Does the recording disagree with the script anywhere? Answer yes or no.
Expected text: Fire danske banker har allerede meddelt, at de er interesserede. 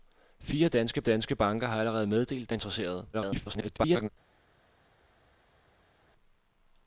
yes